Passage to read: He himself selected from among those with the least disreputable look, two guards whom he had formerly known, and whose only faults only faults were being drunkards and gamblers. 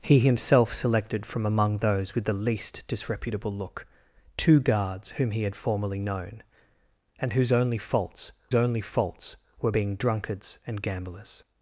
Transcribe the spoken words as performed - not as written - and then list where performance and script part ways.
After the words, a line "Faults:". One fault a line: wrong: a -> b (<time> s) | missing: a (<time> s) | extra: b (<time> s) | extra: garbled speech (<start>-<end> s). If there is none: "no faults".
He himself selected from among those with the least disreputable look, two guards whom he had formerly known, and whose only faults only faults were being drunkards and gamblers.
Faults:
no faults